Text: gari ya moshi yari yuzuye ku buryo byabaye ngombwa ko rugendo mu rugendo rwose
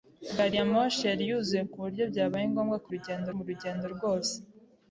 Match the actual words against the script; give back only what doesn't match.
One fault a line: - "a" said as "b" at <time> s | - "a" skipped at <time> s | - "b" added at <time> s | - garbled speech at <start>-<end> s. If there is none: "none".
none